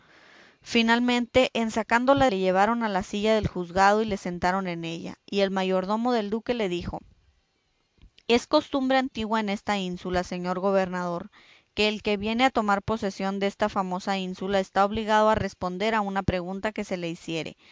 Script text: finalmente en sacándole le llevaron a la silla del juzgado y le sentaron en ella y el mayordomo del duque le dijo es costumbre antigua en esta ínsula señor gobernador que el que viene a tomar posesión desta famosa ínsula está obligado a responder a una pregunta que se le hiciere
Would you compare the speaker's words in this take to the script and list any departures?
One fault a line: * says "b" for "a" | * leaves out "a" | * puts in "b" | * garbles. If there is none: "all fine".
all fine